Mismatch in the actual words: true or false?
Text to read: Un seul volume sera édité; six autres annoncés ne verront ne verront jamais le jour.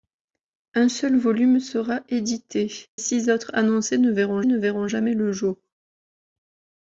false